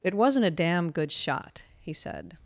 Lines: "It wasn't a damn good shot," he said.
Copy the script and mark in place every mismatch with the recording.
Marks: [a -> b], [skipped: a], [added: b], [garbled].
"It wasn't a damn good shot," he said.